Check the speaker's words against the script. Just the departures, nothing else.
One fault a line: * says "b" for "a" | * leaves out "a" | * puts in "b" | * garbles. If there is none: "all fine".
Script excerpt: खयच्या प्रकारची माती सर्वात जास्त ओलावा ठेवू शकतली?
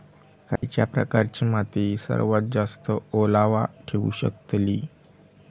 all fine